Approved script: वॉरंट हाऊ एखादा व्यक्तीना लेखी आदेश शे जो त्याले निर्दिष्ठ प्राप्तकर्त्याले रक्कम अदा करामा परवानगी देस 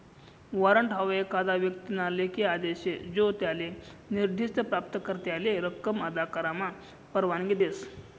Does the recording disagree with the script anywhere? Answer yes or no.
no